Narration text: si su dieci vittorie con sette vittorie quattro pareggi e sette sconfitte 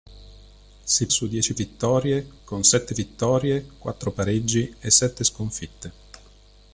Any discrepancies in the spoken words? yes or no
no